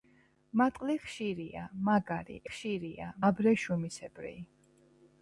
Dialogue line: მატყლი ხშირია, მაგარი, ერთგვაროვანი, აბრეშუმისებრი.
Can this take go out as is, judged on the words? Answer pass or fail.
fail